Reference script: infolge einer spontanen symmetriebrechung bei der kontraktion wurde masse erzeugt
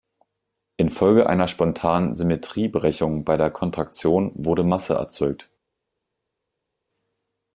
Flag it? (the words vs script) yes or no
no